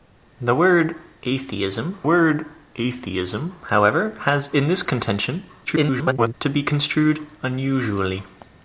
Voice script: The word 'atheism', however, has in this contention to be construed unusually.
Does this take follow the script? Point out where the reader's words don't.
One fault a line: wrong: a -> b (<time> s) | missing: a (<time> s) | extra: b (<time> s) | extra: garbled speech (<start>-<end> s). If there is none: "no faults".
extra: word atheism (2.0 s)
extra: garbled speech (5.7-6.3 s)